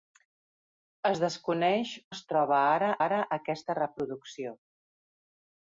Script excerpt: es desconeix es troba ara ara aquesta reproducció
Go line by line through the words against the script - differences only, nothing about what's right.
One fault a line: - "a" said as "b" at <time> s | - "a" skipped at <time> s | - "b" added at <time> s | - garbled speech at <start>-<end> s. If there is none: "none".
none